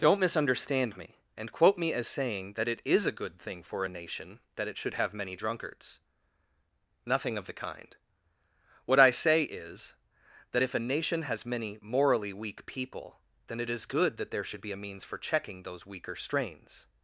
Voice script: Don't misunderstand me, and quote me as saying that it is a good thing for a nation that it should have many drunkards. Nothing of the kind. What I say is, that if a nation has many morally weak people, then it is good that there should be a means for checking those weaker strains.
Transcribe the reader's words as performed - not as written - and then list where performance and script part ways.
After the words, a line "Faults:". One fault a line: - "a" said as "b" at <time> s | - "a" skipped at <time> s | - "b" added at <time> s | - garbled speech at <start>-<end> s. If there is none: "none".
Don't misunderstand me, and quote me as saying that it is a good thing for a nation that it should have many drunkards. Nothing of the kind. What I say is, that if a nation has many morally weak people, then it is good that there should be a means for checking those weaker strains.
Faults:
none